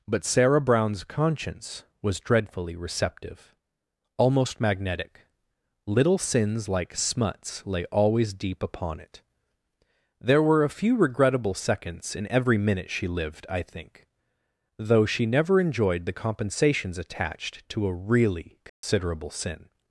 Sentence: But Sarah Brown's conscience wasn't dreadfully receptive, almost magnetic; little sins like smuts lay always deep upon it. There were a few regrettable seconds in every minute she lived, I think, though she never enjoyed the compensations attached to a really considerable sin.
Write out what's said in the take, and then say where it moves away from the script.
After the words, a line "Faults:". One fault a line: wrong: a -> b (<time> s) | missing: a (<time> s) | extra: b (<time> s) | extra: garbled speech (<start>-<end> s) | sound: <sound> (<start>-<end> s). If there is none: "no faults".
But Sarah Brown's conscience was dreadfully receptive, almost magnetic; little sins like smuts lay always deep upon it. There were a few regrettable seconds in every minute she lived, I think, though she never enjoyed the compensations attached to a really considerable sin.
Faults:
wrong: wasn't -> was (2.0 s)
sound: dropout (18.7-18.8 s)